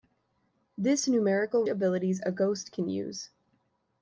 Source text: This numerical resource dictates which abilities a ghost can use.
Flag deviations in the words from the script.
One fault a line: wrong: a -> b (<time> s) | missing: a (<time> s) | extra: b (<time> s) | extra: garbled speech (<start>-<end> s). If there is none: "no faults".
missing: resource dictates which (1.7 s)